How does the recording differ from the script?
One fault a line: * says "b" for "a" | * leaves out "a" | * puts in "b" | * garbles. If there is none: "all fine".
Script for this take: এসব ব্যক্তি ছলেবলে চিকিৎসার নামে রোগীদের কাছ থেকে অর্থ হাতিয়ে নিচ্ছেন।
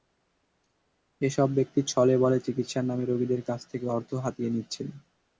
all fine